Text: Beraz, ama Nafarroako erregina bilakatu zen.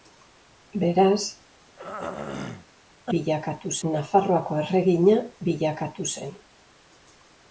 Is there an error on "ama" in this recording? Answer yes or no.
yes